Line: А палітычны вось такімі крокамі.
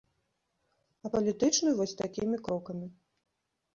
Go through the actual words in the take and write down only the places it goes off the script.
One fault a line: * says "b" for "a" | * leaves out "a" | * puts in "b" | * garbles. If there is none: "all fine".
all fine